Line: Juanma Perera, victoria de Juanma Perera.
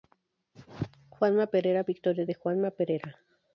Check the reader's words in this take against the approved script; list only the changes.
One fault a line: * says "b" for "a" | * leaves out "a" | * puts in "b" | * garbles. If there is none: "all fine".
all fine